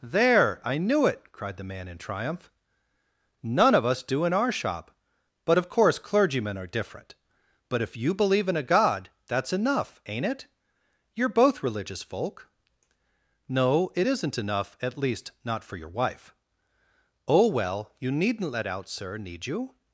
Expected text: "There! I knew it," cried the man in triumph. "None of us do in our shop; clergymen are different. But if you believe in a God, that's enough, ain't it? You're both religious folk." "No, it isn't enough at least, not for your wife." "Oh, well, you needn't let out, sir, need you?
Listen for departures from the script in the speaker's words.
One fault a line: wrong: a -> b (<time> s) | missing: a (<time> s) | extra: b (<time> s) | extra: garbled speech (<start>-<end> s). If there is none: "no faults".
extra: but of course (5.5 s)